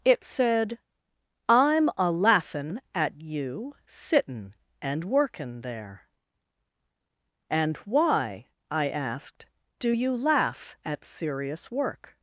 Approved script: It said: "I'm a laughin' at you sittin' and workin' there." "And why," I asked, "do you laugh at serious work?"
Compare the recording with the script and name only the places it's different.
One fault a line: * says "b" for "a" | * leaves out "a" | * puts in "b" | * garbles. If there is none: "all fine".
all fine